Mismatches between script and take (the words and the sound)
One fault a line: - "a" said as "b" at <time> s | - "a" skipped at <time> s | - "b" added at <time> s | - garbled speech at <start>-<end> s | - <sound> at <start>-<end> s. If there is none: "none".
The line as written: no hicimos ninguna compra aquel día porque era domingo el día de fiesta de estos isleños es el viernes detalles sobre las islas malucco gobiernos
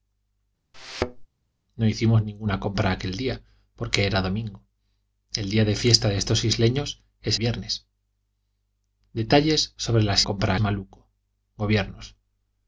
- thud at 0.7-1.3 s
- "el" skipped at 7.4 s
- "islas" said as "compra" at 10.2 s